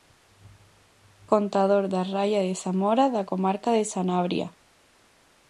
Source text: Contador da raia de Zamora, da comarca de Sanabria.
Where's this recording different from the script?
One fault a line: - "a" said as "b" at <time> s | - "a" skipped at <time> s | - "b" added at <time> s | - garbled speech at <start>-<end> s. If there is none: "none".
none